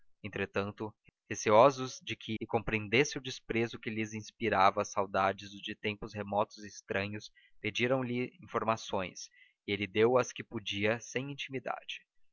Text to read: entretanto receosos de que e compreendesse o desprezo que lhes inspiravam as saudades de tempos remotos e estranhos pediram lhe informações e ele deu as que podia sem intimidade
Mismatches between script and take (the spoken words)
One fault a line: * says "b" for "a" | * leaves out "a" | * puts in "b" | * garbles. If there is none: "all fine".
all fine